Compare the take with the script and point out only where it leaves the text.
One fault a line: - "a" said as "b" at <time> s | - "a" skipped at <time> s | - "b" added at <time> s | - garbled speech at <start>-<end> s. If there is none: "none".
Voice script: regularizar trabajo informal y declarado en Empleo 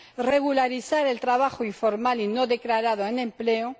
- "el" added at 1.1 s
- "no" added at 2.3 s